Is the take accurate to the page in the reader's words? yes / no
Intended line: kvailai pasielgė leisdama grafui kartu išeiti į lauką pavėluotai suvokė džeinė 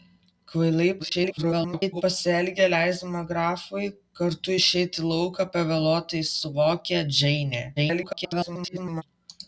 no